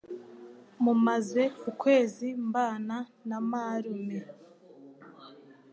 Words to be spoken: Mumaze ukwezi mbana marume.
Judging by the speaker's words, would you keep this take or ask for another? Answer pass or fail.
fail